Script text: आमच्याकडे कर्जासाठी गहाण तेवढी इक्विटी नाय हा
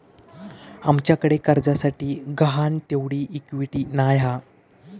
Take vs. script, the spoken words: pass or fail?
pass